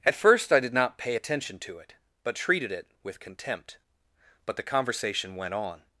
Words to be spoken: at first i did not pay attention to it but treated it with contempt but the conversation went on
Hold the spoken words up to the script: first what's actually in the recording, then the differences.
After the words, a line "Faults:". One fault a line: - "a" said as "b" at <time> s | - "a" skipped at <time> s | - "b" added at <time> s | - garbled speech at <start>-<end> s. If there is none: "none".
at first i did not pay attention to it but treated it with contempt but the conversation went on
Faults:
none